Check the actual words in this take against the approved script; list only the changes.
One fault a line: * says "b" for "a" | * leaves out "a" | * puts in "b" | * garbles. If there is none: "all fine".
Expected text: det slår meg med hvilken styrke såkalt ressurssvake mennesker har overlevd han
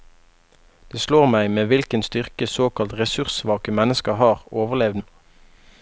all fine